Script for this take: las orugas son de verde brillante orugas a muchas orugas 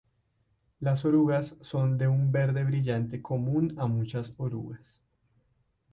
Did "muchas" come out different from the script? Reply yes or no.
no